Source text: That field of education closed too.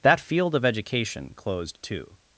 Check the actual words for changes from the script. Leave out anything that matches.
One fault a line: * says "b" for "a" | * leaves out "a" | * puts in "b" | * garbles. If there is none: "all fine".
all fine